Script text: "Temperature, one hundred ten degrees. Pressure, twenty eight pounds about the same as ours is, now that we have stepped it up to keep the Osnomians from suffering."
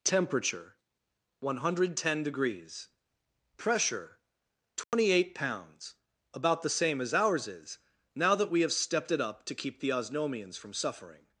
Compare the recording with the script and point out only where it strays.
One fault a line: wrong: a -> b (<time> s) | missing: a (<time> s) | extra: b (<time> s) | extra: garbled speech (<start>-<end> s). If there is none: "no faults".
no faults